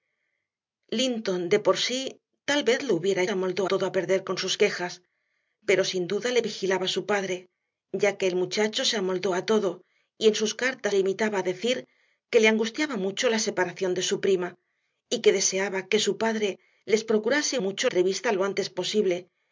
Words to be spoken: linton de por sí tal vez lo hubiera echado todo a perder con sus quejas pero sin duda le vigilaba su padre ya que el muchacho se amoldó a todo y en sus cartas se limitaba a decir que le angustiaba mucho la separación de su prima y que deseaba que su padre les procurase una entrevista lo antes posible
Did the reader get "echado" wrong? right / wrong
wrong